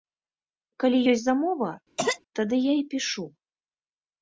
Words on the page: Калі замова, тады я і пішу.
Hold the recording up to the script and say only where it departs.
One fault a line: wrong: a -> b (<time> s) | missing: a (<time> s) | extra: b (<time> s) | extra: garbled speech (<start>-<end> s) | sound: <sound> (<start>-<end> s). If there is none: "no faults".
extra: ёсць (1.1 s)
sound: cough (2.0-2.2 s)